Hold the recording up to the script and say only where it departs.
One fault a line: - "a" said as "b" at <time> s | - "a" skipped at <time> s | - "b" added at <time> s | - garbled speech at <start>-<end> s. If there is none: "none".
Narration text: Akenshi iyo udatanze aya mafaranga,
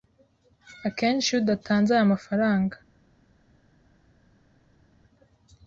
none